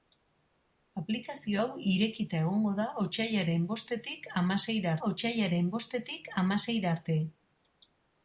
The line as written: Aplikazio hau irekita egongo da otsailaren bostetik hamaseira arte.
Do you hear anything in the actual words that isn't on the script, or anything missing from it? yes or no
yes